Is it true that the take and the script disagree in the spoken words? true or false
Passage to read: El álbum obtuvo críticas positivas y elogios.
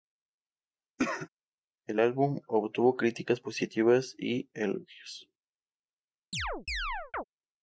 false